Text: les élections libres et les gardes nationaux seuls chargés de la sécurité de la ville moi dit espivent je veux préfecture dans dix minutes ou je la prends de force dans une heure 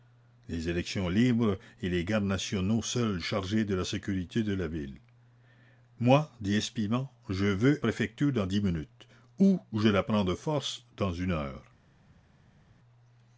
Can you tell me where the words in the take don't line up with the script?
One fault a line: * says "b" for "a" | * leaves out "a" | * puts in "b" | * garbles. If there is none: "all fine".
all fine